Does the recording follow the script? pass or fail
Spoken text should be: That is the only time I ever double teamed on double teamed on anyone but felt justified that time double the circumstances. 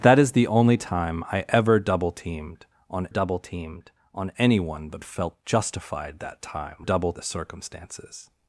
pass